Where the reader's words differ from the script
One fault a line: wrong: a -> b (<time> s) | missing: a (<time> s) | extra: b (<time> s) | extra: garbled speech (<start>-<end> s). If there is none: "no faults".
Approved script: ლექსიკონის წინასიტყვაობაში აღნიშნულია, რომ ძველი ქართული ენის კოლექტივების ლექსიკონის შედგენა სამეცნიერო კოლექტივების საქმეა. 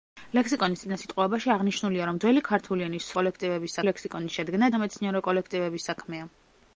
no faults